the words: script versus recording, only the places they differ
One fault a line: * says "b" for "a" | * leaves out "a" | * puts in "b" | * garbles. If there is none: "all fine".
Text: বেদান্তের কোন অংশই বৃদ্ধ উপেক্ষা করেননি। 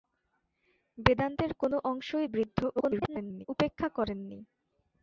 * garbles